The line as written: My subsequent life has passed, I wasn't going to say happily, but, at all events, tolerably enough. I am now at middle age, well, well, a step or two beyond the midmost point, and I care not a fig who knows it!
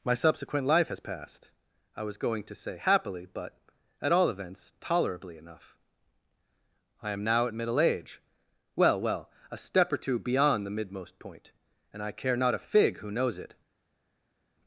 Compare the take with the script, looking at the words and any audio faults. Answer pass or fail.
fail